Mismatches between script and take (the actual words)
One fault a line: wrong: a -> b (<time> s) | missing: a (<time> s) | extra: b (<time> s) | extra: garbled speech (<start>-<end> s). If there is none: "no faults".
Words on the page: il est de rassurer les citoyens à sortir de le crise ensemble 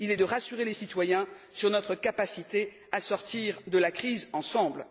extra: sur notre capacité (1.5 s)
wrong: le -> la (3.8 s)